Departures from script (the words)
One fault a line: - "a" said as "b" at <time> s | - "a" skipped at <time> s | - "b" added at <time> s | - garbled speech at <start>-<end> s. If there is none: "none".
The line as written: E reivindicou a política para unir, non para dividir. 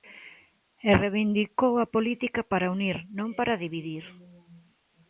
none